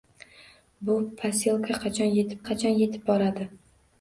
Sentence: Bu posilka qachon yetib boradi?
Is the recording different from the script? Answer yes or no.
yes